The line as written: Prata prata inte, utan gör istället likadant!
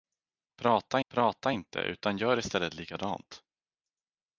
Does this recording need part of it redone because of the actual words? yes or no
no